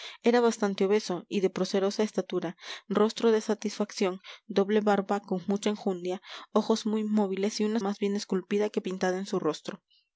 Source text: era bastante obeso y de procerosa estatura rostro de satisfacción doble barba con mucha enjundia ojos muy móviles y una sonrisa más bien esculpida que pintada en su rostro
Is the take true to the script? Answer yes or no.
no